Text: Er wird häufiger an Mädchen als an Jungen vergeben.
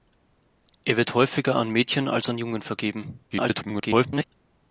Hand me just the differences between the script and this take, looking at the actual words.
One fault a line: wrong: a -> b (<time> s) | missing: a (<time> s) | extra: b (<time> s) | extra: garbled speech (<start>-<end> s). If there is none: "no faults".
extra: garbled speech (3.3-4.2 s)